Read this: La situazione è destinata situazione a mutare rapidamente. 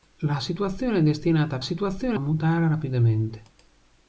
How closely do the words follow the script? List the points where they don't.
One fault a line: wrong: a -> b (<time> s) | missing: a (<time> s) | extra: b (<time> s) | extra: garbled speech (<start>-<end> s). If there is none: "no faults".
no faults